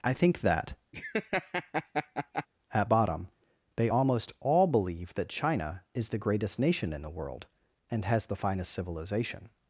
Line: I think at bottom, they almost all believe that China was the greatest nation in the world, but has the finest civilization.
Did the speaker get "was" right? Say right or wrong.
wrong